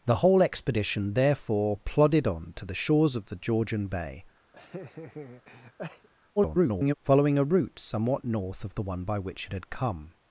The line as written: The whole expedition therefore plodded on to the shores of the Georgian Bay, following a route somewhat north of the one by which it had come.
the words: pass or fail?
fail